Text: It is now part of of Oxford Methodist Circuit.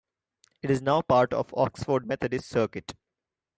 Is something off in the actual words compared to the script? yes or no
yes